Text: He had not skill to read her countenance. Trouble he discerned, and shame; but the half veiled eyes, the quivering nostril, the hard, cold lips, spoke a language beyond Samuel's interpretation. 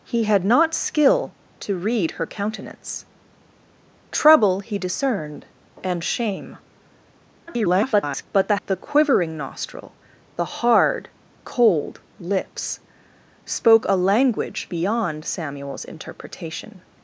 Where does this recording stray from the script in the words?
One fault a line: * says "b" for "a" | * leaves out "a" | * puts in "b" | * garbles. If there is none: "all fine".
* garbles
* leaves out "half veiled eyes"